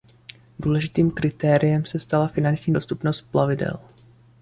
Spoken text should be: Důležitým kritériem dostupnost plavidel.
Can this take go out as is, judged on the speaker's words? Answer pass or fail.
fail